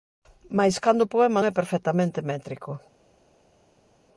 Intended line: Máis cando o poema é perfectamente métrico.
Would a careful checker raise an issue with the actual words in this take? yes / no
no